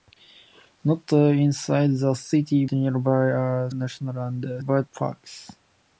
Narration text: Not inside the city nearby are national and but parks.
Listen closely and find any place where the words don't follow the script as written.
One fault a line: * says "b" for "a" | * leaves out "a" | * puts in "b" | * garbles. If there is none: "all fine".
all fine